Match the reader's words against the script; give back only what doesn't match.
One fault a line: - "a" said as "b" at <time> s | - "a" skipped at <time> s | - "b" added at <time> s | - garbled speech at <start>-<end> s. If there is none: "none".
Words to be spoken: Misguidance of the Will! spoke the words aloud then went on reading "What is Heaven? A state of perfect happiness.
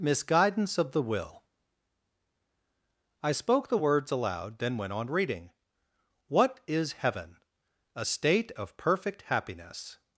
- "I" added at 3.2 s